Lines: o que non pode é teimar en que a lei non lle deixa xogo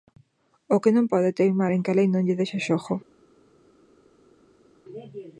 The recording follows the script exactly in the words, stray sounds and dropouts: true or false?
true